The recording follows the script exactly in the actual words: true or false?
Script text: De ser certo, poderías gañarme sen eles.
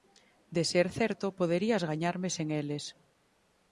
true